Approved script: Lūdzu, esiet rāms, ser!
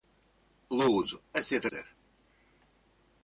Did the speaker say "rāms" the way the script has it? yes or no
no